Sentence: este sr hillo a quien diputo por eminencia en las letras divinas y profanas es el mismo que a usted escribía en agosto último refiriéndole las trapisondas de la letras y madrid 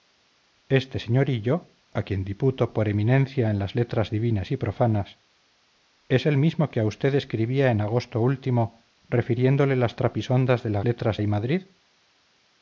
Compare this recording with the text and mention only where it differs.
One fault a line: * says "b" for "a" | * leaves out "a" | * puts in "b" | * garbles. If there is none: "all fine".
all fine